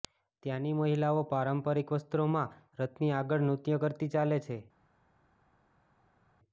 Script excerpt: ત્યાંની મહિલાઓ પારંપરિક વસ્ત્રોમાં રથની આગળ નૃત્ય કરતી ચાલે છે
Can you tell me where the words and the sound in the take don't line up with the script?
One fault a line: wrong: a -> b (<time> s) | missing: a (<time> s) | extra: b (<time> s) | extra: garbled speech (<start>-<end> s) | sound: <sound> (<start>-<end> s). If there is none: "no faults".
no faults